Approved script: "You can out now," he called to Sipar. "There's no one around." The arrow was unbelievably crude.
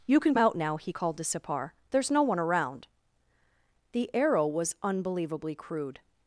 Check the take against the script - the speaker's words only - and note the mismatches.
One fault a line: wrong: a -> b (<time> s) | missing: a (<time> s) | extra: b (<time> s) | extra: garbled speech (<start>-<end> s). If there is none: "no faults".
no faults